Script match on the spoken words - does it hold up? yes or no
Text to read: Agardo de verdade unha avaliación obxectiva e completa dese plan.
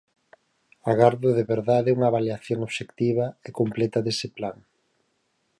yes